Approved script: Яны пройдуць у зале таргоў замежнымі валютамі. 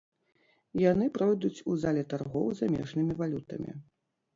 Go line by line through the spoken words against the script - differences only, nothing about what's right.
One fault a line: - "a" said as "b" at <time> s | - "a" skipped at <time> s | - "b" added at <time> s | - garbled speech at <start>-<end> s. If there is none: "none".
none